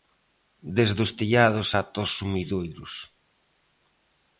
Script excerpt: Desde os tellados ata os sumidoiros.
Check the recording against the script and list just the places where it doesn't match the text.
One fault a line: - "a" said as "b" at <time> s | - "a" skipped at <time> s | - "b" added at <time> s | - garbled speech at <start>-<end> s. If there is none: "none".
none